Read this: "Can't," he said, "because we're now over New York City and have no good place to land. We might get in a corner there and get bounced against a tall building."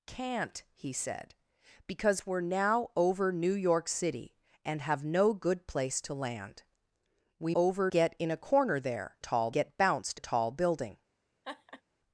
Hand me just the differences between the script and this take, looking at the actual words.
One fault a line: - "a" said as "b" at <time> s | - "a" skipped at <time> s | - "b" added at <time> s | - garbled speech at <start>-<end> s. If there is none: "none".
- "might" said as "over" at 7.5 s
- "and" said as "tall" at 9.2 s
- "against" skipped at 10.2 s